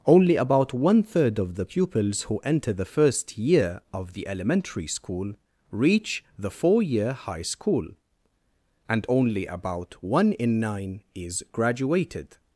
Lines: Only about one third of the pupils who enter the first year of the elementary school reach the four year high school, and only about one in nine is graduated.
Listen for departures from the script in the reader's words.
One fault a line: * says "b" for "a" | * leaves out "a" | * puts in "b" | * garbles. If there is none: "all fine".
all fine